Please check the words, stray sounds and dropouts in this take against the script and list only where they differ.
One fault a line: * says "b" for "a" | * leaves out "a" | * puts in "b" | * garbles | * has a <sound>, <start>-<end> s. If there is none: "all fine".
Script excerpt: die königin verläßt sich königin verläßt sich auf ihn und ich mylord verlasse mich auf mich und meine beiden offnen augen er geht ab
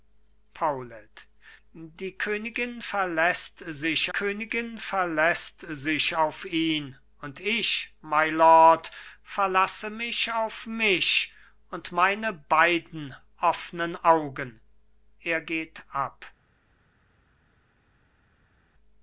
all fine